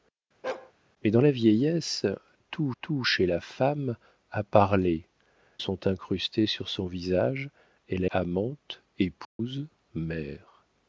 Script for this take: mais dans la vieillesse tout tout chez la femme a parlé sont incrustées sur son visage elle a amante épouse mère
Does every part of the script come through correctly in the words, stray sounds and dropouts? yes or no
no